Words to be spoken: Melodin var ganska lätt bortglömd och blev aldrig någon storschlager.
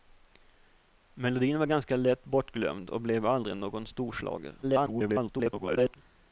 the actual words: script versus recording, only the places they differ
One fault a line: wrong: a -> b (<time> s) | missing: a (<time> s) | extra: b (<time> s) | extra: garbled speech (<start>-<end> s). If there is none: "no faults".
extra: garbled speech (4.6-6.0 s)